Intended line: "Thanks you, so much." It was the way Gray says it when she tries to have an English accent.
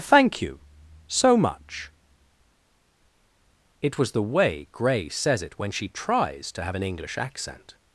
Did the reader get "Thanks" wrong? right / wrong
wrong